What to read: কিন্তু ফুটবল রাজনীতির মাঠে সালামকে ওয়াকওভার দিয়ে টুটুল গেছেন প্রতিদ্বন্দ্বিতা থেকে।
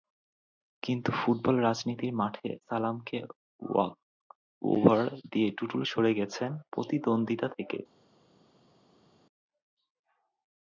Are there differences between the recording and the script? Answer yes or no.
yes